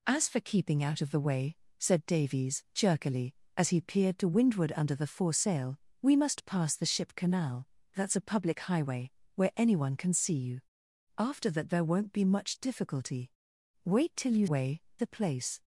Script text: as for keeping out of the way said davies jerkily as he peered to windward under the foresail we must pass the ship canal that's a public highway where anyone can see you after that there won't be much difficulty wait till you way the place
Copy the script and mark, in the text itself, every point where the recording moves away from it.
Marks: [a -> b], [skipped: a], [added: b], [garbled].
as for keeping out of the way said davies jerkily as he peered to windward under the foresail we must pass the ship canal that's a public highway where anyone can see you after that there won't be much difficulty wait till you way the place